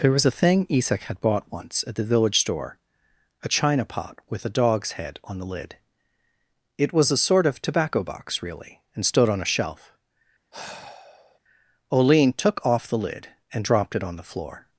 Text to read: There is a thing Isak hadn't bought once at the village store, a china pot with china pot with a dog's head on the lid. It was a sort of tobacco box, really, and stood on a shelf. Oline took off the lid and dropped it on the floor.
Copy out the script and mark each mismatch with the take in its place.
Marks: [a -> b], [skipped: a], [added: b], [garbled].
There [is -> was] a thing Isak [hadn't -> had] bought once at the village store, a china pot with [skipped: china pot with] a dog's head on the lid. It was a sort of tobacco box, really, and stood on a shelf. Oline took off the lid and dropped it on the floor.